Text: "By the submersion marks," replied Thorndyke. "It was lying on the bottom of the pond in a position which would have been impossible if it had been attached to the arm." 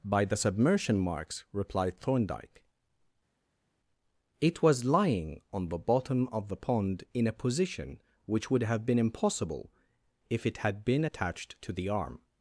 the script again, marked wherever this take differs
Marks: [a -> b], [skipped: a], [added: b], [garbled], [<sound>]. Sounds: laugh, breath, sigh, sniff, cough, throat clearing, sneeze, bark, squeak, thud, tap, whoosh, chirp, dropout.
"By the submersion marks," replied Thorndyke. "It was lying on the bottom of the pond in a position which would have been impossible if it had been attached to the arm."